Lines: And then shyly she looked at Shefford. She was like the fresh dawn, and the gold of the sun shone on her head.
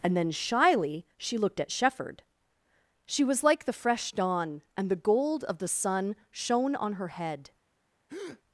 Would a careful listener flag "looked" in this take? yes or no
no